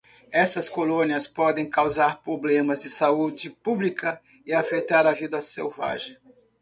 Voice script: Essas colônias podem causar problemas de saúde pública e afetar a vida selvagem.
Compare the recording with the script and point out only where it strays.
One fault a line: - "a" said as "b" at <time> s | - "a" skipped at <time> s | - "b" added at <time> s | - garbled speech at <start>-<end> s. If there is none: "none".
none